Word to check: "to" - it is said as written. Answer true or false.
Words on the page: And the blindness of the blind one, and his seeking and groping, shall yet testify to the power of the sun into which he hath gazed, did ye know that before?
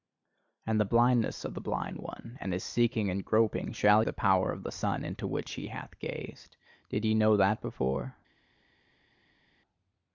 false